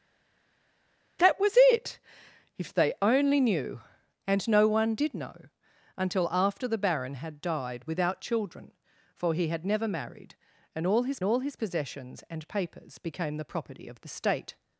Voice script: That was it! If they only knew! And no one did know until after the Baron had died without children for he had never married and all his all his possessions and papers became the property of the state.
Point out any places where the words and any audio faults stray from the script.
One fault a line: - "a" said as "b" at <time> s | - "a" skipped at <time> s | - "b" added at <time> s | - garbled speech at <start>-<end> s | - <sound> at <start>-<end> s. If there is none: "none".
none